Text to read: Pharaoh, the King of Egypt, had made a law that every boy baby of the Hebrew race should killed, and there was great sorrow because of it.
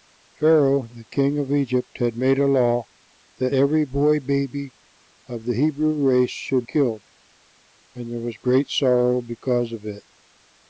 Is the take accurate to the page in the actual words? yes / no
yes